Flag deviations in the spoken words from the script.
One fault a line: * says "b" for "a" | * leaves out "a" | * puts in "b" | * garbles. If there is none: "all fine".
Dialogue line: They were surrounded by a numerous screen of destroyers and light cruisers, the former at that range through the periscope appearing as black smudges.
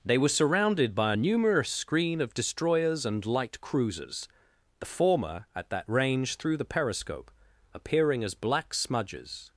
all fine